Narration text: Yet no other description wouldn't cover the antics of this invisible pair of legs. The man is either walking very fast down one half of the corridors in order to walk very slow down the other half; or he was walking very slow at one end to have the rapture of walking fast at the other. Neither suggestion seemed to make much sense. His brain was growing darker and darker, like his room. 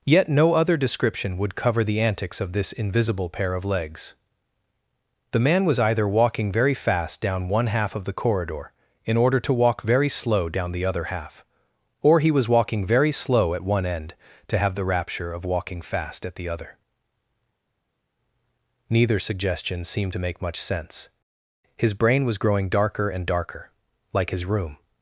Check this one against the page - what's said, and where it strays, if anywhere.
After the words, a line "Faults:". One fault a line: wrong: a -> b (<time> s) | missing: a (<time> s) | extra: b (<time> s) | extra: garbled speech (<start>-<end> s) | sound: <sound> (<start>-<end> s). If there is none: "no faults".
Yet no other description would cover the antics of this invisible pair of legs. The man was either walking very fast down one half of the corridor in order to walk very slow down the other half; or he was walking very slow at one end to have the rapture of walking fast at the other. Neither suggestion seemed to make much sense. His brain was growing darker and darker, like his room.
Faults:
wrong: wouldn't -> would (1.4 s)
wrong: is -> was (5.6 s)
wrong: corridors -> corridor (8.1 s)